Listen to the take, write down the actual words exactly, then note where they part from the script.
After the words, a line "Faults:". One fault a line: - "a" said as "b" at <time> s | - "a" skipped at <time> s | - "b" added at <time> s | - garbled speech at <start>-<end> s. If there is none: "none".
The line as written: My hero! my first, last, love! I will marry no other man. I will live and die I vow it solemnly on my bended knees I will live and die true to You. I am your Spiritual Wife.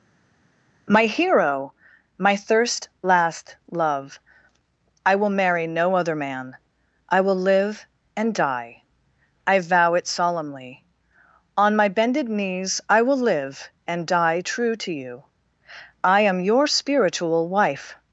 My hero! my thirst, last, love! I will marry no other man. I will live and die I vow it solemnly on my bended knees I will live and die true to You. I am your Spiritual Wife.
Faults:
- "first" said as "thirst" at 2.3 s